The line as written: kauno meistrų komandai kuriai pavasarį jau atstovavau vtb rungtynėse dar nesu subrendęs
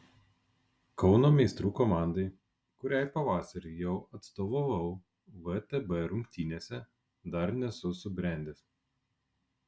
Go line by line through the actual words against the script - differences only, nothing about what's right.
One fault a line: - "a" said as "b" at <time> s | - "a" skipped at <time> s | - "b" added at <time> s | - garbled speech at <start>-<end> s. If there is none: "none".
none